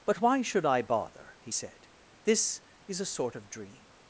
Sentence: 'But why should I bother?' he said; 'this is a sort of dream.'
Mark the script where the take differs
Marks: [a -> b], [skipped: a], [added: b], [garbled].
'But why should I bother?' he said; 'this is a sort of dream.'